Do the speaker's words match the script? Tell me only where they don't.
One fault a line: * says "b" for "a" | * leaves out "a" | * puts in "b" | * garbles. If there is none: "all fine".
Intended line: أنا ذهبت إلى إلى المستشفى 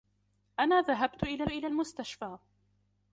all fine